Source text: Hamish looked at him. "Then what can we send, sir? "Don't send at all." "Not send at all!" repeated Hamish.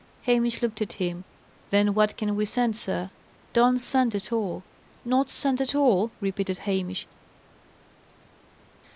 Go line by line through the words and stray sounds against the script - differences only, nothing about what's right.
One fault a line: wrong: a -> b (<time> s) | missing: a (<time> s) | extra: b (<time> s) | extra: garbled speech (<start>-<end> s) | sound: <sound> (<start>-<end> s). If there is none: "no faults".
no faults